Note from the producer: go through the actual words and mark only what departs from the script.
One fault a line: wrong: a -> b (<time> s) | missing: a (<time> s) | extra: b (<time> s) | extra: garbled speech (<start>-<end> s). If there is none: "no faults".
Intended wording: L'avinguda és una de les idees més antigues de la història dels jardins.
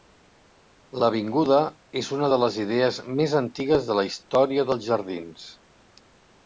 no faults